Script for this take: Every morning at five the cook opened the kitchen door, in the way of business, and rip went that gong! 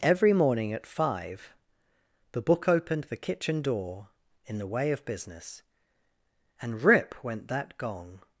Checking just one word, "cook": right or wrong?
wrong